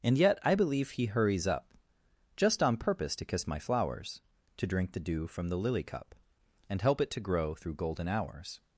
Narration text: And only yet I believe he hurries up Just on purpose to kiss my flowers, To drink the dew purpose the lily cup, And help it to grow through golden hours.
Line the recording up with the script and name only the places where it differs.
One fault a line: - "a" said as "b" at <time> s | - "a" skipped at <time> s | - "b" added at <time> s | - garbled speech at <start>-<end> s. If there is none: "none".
- "only" skipped at 0.2 s
- "purpose" said as "from" at 5.3 s